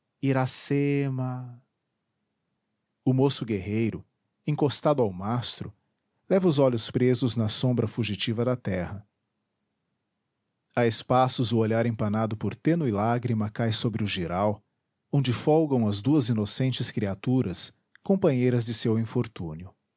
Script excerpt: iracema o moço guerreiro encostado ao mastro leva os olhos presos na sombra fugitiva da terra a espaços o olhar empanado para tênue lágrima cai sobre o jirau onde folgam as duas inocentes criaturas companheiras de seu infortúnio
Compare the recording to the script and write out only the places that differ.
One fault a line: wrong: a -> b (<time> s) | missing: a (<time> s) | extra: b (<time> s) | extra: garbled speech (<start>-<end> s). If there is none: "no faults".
wrong: para -> por (12.4 s)